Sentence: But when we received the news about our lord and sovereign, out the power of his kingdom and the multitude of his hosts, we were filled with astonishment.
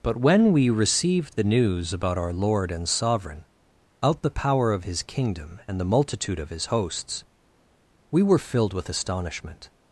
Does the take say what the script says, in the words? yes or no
yes